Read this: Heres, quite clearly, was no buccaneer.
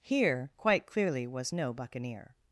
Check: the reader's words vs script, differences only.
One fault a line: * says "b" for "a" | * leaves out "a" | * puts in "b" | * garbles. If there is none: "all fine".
* says "Here" for "Heres"